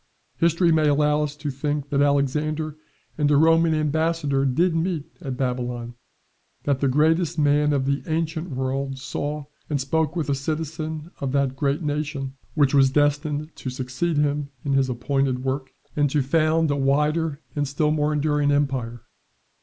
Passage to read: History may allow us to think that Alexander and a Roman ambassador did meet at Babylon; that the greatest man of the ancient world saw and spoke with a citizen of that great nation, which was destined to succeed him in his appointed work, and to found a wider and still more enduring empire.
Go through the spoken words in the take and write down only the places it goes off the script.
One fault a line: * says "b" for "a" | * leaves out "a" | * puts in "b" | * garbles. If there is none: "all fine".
all fine